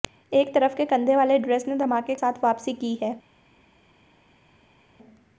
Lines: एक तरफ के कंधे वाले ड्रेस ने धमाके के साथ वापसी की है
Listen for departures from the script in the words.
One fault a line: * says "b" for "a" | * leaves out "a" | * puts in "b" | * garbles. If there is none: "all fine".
* leaves out "के"